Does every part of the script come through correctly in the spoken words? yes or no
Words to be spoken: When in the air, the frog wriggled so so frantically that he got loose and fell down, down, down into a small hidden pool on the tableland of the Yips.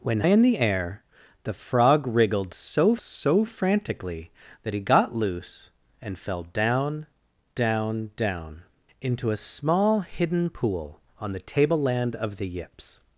yes